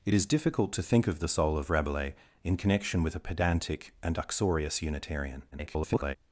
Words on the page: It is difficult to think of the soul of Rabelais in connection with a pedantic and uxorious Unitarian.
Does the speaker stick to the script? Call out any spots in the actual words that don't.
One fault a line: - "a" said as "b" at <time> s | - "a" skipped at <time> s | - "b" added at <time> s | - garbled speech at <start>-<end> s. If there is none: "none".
- garbled speech at 5.5-6.2 s